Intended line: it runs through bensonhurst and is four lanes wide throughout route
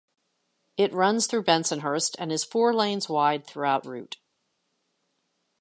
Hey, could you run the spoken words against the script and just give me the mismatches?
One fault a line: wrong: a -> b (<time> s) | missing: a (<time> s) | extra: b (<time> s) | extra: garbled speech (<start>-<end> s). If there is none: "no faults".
no faults